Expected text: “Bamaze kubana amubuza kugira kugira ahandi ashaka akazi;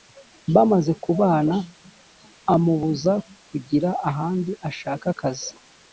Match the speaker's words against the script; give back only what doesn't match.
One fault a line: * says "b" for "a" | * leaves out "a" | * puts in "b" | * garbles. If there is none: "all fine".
* leaves out "kugira"